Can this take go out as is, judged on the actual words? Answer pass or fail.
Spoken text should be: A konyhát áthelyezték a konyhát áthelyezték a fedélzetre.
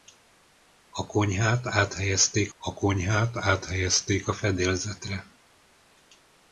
pass